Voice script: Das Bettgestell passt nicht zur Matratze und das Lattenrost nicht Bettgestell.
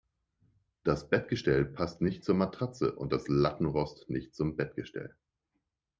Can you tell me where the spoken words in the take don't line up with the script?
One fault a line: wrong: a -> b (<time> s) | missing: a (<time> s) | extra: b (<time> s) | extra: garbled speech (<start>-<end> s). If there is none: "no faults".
extra: zum (4.3 s)